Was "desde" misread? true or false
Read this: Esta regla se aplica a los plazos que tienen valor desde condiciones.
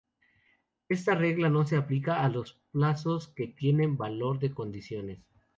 true